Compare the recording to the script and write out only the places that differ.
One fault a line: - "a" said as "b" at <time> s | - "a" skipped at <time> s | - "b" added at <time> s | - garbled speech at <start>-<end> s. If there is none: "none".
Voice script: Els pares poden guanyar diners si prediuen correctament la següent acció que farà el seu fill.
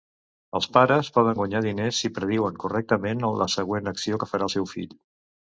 none